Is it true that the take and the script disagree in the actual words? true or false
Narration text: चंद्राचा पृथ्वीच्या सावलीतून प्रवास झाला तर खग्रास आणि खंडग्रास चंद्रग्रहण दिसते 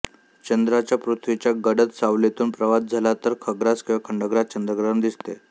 true